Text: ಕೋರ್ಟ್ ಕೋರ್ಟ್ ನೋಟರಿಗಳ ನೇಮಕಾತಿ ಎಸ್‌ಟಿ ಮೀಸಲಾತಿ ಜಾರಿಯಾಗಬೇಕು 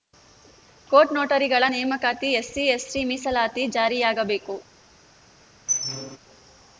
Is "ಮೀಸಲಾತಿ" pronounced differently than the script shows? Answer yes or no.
no